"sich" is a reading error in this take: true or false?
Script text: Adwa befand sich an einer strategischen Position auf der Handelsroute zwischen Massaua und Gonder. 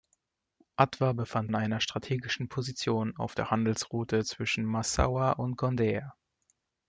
true